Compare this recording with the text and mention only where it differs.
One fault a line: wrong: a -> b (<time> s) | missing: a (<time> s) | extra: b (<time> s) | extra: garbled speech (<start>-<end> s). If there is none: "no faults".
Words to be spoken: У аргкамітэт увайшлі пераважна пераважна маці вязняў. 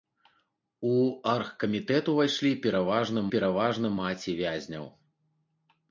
no faults